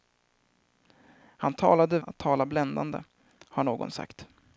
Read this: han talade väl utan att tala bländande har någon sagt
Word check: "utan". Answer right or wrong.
wrong